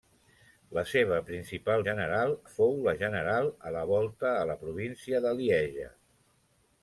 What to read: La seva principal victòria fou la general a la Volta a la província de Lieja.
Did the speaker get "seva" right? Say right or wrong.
right